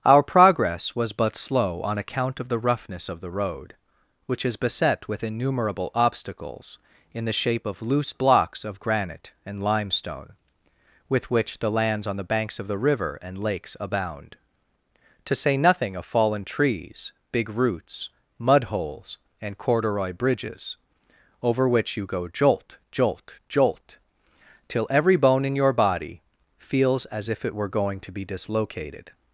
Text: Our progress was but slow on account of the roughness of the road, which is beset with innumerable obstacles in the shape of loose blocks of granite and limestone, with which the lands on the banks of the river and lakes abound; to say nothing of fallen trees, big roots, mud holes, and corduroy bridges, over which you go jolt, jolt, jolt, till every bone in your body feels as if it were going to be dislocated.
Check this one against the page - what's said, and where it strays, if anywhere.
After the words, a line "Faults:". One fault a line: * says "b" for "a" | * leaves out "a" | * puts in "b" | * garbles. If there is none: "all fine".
Our progress was but slow on account of the roughness of the road, which is beset with innumerable obstacles in the shape of loose blocks of granite and limestone, with which the lands on the banks of the river and lakes abound; to say nothing of fallen trees, big roots, mud holes, and corduroy bridges, over which you go jolt, jolt, jolt, till every bone in your body feels as if it were going to be dislocated.
Faults:
all fine